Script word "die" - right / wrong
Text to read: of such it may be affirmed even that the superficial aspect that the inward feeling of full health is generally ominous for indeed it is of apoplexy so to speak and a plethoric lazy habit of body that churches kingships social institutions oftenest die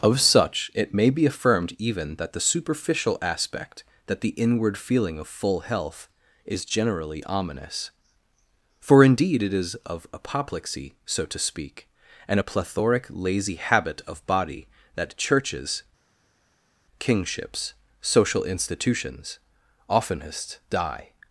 right